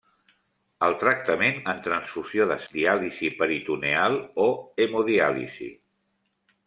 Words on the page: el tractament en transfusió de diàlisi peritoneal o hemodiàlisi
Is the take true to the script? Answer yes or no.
yes